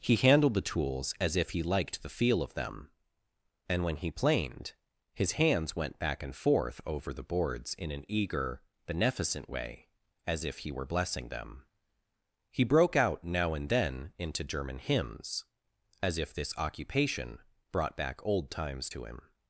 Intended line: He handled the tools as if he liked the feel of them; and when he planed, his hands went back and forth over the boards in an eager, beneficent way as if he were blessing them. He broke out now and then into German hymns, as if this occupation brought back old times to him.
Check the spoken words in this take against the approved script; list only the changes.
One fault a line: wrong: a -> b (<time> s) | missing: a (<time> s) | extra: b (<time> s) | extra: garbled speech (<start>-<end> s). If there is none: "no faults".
no faults